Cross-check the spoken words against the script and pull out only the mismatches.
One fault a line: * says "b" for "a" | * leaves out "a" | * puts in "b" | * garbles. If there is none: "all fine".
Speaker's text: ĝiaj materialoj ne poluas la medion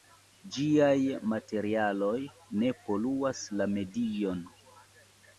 all fine